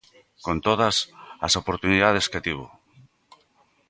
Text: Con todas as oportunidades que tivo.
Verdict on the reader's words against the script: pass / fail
pass